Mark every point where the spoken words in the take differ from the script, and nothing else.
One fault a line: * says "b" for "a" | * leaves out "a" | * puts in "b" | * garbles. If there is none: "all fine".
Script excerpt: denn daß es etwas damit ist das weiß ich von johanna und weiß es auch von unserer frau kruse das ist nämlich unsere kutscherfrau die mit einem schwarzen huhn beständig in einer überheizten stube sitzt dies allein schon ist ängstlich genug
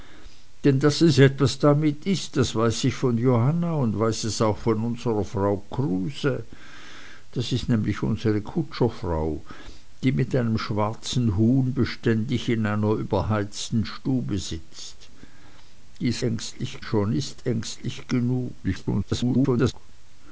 * says "ängstlich" for "allein"
* garbles